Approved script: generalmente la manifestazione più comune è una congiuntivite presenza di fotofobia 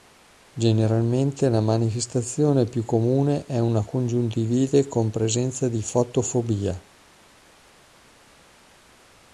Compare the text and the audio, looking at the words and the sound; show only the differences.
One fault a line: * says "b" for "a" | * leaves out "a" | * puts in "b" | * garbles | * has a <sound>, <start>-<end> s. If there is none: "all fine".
* puts in "con"